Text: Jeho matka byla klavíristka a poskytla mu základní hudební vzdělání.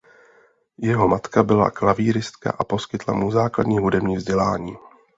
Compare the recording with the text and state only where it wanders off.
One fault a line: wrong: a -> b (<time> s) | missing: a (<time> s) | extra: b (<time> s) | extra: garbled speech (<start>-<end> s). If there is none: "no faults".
no faults